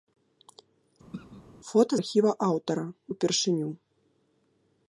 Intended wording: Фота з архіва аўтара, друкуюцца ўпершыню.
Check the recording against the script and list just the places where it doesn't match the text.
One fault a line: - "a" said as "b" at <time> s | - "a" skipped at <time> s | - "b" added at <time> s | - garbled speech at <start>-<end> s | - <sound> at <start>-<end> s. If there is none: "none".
- throat clearing at 1.1-1.4 s
- "з" skipped at 1.9 s
- "друкуюцца" skipped at 2.9 s